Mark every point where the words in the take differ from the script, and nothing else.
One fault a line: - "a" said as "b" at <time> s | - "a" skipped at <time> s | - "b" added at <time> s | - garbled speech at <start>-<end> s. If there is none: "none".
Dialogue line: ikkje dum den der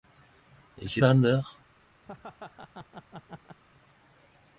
- "dum" skipped at 1.0 s